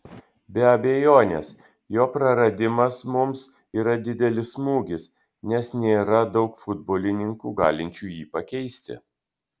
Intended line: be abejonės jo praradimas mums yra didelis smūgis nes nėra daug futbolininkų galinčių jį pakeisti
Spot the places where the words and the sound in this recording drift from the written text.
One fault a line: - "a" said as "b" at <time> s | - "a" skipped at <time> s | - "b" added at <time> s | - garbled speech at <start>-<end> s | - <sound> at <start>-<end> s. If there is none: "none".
none